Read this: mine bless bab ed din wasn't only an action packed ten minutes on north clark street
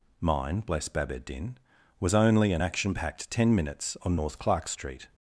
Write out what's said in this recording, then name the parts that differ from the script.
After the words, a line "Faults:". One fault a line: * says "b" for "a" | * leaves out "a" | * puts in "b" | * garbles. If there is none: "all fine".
mine bless bab ed din was only an action packed ten minutes on north clark street
Faults:
* says "was" for "wasn't"